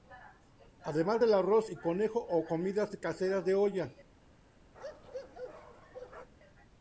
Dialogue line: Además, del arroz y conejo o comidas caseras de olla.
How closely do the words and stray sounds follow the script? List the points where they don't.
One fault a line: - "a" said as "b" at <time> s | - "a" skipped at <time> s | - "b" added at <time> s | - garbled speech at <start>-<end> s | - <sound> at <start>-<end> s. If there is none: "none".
- bark at 4.7-6.3 s